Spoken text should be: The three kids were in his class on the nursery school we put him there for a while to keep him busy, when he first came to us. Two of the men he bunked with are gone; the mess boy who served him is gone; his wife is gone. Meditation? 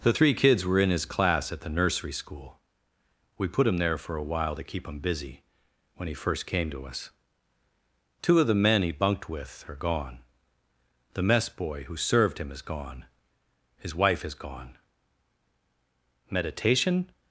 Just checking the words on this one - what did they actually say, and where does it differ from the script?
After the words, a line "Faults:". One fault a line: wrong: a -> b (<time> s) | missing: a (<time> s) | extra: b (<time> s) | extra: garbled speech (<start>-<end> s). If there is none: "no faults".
The three kids were in his class at the nursery school we put him there for a while to keep him busy, when he first came to us. Two of the men he bunked with are gone; the mess boy who served him is gone; his wife is gone. Meditation?
Faults:
wrong: on -> at (1.5 s)